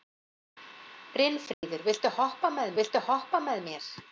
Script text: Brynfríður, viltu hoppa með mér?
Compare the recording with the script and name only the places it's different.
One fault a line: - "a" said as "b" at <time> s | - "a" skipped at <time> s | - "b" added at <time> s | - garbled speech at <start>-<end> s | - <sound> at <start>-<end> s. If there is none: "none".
- dropout at 1.5-1.6 s
- "viltu hoppa með" added at 2.8 s